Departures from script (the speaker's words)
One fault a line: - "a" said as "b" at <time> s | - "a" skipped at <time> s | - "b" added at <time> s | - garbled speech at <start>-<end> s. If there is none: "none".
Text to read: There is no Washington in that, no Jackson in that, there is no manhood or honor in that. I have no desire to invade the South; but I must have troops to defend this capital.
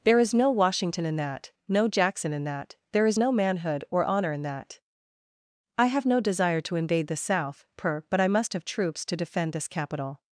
- "per" added at 7.7 s